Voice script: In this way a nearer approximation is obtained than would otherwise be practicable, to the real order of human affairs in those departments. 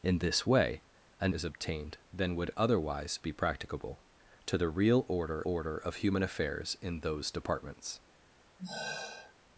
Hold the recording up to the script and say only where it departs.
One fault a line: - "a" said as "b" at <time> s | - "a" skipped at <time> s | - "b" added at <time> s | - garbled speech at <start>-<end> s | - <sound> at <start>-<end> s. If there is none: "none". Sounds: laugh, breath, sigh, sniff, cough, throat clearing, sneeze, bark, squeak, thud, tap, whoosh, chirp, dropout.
- "nearer approximation" skipped at 1.3 s
- "order" added at 5.5 s
- sigh at 8.6-9.3 s